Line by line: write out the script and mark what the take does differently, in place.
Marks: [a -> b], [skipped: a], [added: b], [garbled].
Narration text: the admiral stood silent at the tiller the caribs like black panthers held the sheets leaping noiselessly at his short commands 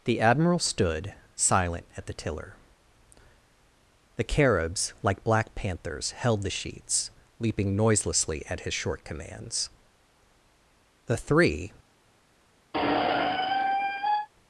the admiral stood silent at the tiller the caribs like black panthers held the sheets leaping noiselessly at his short commands [added: the three]